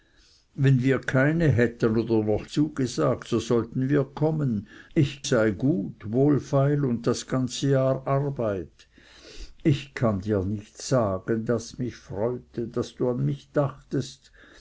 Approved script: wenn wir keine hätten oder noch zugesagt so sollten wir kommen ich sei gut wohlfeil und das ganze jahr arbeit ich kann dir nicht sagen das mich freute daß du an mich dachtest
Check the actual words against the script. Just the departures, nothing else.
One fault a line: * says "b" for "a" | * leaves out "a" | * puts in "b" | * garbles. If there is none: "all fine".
all fine